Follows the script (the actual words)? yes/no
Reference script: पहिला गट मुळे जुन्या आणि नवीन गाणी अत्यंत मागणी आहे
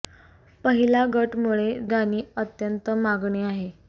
no